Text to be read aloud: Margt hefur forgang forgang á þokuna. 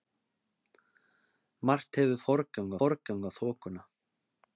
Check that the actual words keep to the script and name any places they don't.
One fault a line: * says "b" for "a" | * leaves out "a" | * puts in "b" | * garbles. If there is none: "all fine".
all fine